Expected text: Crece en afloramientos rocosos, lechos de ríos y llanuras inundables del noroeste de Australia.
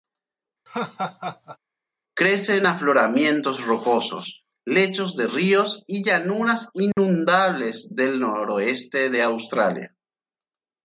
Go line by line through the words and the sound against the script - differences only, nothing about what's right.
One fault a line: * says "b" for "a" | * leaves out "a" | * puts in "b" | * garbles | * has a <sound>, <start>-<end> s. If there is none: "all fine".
* has a laugh, 0.7-1.6 s
* has a dropout, 6.9-7.0 s